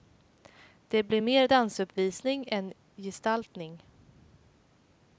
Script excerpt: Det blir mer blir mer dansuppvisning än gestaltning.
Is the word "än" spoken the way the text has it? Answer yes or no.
yes